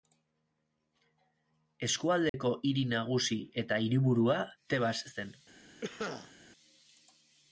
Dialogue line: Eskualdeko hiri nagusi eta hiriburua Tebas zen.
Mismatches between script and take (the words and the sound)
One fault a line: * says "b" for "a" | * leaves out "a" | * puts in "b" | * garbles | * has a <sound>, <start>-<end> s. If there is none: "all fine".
* has a dropout, 2.3-2.3 s
* has a cough, 5.8-6.3 s